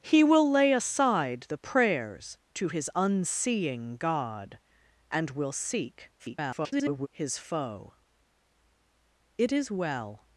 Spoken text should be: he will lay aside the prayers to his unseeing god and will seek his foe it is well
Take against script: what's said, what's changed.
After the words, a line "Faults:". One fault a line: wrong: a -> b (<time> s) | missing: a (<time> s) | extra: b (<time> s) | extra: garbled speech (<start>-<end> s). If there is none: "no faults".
he will lay aside the prayers to his unseeing god and will seek [garbled] his foe it is well
Faults:
extra: garbled speech (6.2-7.1 s)